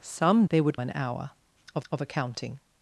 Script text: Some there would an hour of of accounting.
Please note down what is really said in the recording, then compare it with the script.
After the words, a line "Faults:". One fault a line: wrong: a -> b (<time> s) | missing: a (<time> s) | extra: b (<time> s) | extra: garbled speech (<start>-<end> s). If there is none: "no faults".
Some there would an hour of of accounting.
Faults:
no faults